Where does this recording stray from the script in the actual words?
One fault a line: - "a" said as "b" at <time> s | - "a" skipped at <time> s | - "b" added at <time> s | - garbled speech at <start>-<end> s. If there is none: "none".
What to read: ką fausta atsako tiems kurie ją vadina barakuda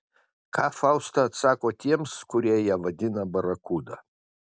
none